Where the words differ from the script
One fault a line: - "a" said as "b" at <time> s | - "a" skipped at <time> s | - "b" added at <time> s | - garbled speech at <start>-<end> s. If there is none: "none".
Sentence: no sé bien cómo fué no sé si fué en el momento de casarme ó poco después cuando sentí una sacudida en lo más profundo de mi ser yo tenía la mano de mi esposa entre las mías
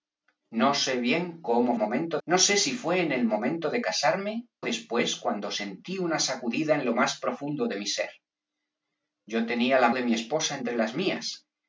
- "fué" said as "momento" at 1.7 s
- "ó poco" skipped at 4.5 s
- "mano" skipped at 9.9 s